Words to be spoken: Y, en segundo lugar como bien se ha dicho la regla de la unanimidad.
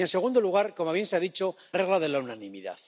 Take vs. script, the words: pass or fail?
fail